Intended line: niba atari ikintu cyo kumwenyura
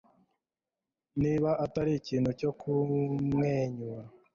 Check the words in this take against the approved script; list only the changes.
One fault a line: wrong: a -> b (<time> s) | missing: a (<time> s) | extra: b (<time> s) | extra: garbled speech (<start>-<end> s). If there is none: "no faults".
no faults